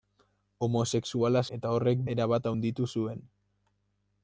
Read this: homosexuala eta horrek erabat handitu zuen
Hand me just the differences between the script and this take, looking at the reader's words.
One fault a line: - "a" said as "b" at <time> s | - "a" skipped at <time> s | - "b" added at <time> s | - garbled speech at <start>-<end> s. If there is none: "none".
none